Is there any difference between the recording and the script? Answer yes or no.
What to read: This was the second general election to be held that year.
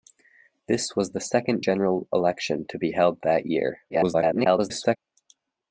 yes